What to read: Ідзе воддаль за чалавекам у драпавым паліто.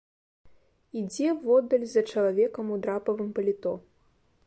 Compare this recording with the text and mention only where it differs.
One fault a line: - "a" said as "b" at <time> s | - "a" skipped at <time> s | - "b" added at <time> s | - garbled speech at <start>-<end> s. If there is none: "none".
none